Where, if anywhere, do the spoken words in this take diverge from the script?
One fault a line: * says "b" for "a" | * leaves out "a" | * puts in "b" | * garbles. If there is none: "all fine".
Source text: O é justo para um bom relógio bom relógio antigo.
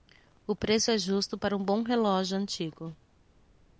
* puts in "preço"
* leaves out "bom relógio"